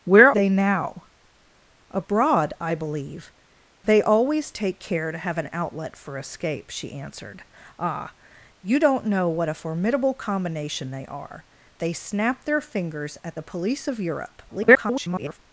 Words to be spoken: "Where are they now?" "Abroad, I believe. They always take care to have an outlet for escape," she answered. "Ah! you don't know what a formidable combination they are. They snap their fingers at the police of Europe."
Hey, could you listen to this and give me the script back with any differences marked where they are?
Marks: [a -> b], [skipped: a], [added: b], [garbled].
"Where [skipped: are] they now?" "Abroad, I believe. They always take care to have an outlet for escape," she answered. "Ah! you don't know what a formidable combination they are. They snap their fingers at the police of Europe." [garbled]